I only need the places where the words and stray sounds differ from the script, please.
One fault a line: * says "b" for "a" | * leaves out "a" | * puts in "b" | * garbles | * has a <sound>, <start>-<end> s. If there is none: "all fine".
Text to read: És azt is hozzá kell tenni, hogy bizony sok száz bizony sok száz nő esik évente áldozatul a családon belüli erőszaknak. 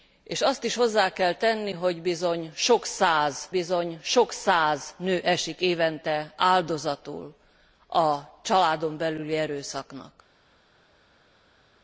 all fine